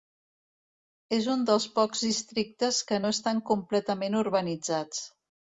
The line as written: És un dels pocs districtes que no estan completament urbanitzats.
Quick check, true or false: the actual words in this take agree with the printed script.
true